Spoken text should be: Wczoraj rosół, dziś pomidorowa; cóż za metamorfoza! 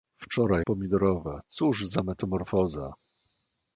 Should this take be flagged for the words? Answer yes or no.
yes